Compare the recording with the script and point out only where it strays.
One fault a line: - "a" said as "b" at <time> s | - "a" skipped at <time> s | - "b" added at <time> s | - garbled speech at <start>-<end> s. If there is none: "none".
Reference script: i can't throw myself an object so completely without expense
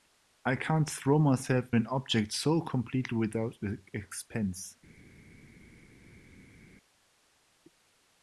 none